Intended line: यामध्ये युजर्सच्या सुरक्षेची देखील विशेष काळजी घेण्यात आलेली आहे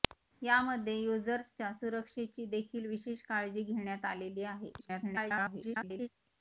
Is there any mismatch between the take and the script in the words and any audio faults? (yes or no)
yes